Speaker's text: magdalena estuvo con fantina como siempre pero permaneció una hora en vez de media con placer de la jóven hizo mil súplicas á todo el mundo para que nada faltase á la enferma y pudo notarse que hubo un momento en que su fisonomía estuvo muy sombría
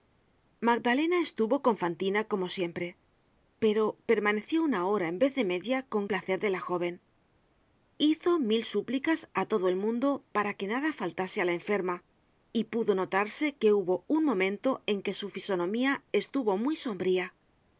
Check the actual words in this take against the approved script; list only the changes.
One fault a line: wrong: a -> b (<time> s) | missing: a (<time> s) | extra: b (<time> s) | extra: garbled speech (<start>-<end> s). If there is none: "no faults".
no faults